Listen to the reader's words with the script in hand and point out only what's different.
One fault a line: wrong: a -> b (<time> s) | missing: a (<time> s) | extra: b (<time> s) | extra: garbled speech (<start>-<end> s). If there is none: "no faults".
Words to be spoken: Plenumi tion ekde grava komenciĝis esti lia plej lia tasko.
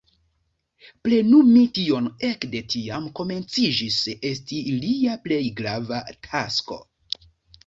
wrong: grava -> tiam (2.7 s)
wrong: lia -> grava (5.6 s)